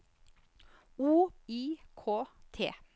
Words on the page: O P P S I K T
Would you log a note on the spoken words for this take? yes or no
yes